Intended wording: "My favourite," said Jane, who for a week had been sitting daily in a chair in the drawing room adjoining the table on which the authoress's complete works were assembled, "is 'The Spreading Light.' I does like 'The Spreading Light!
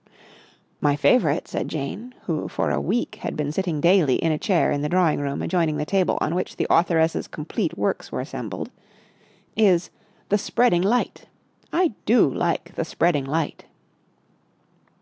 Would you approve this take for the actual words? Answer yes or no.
no